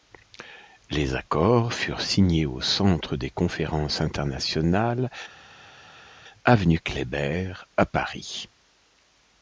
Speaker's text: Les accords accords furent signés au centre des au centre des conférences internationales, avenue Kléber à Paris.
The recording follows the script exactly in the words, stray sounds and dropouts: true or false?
false